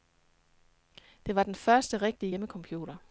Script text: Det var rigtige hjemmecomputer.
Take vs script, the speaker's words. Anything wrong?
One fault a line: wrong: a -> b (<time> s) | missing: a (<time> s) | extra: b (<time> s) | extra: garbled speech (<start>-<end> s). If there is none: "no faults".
extra: den første (1.4 s)